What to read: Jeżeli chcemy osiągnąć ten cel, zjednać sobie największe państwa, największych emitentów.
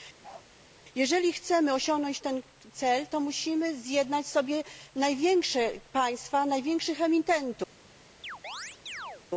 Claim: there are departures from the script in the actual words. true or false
true